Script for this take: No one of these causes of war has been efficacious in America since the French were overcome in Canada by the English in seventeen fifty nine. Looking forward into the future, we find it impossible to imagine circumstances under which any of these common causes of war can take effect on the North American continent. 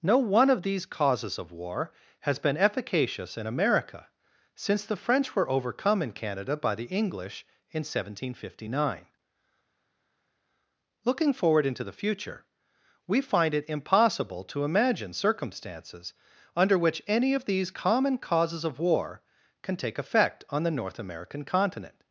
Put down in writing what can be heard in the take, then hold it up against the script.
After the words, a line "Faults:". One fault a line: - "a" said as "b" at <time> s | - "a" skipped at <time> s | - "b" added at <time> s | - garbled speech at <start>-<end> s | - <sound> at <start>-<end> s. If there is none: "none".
No one of these causes of war has been efficacious in America since the French were overcome in Canada by the English in seventeen fifty nine. Looking forward into the future, we find it impossible to imagine circumstances under which any of these common causes of war can take effect on the North American continent.
Faults:
none